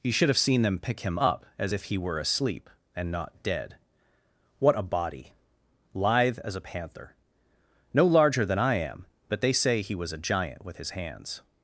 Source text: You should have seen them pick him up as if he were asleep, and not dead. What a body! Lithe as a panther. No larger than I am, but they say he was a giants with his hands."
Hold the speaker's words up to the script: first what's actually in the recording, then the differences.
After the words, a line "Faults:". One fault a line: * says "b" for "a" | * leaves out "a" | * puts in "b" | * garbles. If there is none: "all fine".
You should have seen them pick him up as if he were asleep, and not dead. What a body! Lithe as a panther. No larger than I am, but they say he was a giant with his hands."
Faults:
* says "giant" for "giants"